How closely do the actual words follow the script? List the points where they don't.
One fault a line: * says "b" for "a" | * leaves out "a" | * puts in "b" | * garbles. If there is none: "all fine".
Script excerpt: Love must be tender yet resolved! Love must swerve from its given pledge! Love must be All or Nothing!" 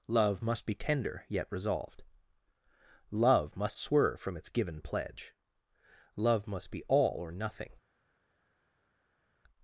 all fine